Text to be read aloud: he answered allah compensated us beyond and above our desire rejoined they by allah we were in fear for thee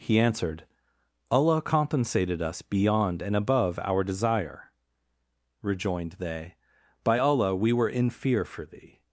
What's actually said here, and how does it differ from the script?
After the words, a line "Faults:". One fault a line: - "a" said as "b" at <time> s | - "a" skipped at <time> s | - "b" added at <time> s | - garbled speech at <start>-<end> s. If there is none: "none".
he answered allah compensated us beyond and above our desire rejoined they by allah we were in fear for thee
Faults:
none